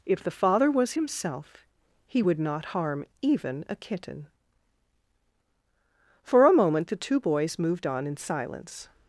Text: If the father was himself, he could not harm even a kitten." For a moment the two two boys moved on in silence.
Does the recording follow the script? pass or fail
fail